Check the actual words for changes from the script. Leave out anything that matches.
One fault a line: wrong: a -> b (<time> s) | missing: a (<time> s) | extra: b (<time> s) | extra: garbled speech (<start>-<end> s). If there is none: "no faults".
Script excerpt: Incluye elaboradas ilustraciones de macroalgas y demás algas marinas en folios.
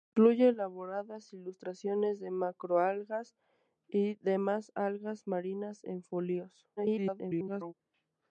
extra: garbled speech (6.8-7.7 s)